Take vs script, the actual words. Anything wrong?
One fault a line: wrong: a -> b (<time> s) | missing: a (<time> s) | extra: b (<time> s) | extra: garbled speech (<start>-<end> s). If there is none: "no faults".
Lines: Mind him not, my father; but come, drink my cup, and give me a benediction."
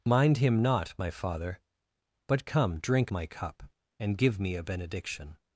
no faults